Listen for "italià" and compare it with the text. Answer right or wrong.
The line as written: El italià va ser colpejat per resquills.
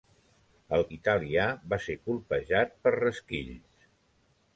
right